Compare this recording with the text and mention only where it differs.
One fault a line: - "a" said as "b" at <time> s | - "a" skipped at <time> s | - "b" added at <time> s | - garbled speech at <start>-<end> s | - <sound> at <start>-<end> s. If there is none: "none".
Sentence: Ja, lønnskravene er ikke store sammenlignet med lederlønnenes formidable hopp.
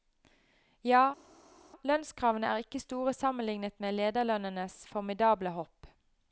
none